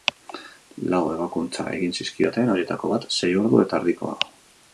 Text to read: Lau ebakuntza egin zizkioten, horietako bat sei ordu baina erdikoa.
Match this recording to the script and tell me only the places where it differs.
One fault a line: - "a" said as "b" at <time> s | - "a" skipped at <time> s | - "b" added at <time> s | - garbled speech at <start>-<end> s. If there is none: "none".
- "baina" said as "eta" at 3.7 s